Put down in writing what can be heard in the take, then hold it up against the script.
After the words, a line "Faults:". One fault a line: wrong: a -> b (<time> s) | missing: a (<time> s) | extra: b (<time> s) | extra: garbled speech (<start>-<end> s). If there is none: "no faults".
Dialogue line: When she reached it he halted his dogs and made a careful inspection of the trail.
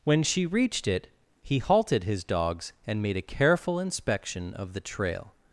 When she reached it he halted his dogs and made a careful inspection of the trail.
Faults:
no faults